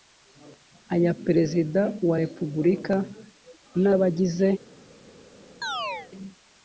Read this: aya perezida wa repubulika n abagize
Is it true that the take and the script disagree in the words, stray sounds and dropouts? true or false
true